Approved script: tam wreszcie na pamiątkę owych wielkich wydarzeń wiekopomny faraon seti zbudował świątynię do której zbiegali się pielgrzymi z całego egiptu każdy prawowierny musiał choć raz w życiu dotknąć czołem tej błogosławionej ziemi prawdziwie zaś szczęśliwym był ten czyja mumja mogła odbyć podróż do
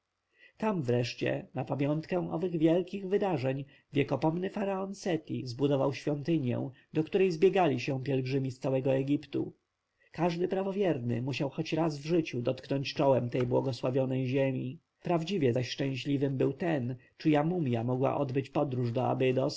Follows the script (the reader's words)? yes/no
yes